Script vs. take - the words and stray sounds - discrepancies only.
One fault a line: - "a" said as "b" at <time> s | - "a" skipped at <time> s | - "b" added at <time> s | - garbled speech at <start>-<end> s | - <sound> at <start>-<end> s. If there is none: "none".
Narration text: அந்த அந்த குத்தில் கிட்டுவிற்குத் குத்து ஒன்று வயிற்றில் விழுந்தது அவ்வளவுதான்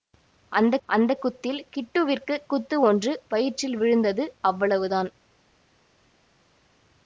none